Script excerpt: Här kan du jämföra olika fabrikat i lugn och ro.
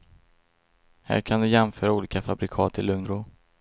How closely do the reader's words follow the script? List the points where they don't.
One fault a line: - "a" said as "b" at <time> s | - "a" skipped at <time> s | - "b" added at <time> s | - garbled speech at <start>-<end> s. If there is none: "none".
- "och" skipped at 3.1 s